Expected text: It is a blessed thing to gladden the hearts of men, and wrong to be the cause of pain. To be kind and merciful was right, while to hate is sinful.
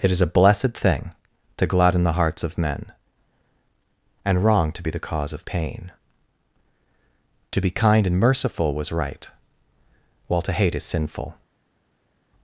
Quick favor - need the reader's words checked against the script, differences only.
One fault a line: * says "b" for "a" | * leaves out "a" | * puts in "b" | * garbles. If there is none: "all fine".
all fine